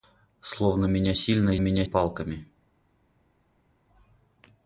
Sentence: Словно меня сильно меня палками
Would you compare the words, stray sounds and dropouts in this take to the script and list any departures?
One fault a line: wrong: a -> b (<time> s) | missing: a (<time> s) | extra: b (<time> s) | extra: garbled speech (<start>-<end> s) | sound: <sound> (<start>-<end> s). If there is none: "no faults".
no faults